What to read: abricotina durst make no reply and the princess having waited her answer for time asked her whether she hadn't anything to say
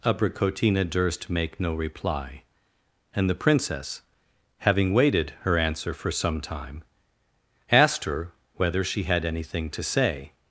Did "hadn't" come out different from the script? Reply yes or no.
yes